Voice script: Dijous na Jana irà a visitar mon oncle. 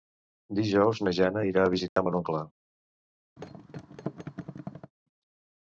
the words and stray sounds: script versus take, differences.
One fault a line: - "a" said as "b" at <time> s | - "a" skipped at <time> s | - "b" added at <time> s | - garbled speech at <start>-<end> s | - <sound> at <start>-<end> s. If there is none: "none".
- dropout at 1.9-2.0 s
- thud at 3.4-4.9 s